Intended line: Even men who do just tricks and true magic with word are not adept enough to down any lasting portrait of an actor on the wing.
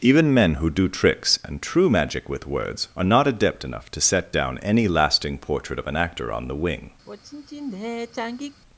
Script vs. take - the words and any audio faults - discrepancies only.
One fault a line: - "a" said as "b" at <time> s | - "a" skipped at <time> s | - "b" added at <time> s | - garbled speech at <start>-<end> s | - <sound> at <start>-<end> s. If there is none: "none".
- "just" skipped at 0.9 s
- "word" said as "words" at 2.5 s
- "set" added at 4.0 s
- sigh at 7.1-8.6 s